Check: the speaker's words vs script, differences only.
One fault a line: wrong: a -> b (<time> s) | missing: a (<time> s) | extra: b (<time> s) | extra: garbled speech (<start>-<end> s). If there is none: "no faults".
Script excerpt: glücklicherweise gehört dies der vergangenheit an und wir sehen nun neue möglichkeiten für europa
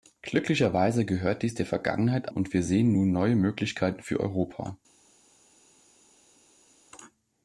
missing: an (2.3 s)